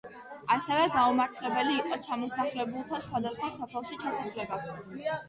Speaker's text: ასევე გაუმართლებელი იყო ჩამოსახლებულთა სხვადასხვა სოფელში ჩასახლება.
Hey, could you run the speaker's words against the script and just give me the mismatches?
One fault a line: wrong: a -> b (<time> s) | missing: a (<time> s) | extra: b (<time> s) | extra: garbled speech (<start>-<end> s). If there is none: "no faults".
no faults